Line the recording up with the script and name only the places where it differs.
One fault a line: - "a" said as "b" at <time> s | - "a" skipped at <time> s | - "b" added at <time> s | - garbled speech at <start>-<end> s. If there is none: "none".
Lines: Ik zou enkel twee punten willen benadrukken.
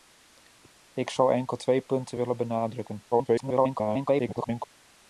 - garbled speech at 3.1-4.7 s